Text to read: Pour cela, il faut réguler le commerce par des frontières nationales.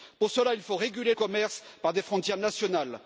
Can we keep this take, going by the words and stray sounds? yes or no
no